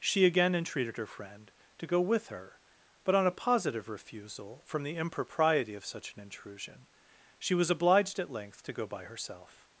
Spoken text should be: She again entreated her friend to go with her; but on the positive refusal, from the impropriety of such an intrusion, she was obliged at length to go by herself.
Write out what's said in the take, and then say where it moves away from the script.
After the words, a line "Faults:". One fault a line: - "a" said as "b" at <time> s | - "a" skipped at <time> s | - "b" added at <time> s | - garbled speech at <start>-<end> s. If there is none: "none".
She again entreated her friend to go with her; but on a positive refusal, from the impropriety of such an intrusion, she was obliged at length to go by herself.
Faults:
- "the" said as "a" at 3.3 s